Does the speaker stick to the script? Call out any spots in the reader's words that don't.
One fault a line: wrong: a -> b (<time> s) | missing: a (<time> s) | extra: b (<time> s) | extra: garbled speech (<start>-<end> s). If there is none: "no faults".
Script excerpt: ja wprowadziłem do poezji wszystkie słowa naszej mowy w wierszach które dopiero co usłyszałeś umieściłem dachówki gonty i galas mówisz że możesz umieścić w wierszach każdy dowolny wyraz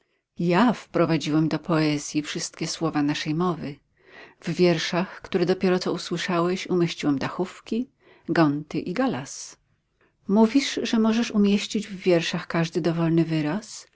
no faults